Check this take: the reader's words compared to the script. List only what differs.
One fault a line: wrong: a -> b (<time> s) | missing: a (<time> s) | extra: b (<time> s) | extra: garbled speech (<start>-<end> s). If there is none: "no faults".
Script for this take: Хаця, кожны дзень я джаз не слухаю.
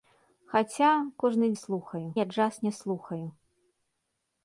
wrong: дзень -> слухаю (1.5 s)